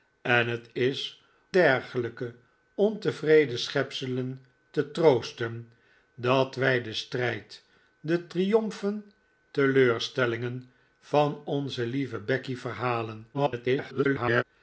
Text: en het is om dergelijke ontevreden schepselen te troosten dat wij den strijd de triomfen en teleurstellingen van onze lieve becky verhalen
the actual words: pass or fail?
fail